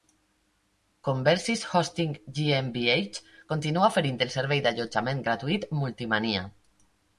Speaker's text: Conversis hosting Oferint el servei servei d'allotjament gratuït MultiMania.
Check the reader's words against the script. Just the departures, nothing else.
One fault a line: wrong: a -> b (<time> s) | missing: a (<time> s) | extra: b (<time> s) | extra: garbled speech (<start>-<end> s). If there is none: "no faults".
extra: GmbH continua (2.4 s)
missing: servei (4.7 s)